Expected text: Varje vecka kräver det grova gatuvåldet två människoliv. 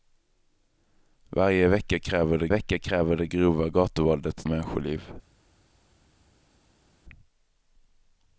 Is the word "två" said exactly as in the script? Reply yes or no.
no